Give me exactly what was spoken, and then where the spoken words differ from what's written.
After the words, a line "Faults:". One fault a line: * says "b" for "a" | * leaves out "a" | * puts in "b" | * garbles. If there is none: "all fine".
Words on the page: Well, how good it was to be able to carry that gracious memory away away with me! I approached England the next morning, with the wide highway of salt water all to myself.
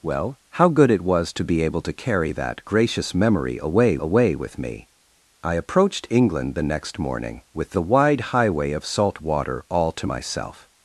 Well, how good it was to be able to carry that gracious memory away away with me! I approached England the next morning, with the wide highway of salt water all to myself.
Faults:
all fine